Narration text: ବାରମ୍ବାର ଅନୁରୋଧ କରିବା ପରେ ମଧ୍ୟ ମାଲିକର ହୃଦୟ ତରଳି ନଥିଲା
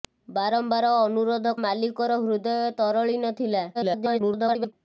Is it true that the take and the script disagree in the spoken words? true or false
true